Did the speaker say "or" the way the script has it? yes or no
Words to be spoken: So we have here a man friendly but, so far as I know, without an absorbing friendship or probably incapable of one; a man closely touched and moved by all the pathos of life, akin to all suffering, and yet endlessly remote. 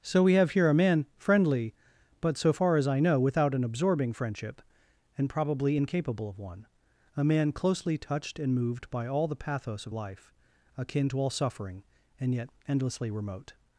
no